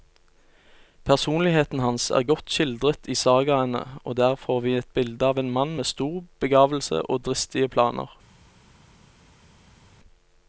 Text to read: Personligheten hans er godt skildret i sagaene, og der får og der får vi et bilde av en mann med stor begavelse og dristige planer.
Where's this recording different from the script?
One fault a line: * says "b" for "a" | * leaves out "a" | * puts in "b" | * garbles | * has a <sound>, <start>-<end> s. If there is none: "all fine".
* leaves out "og der får"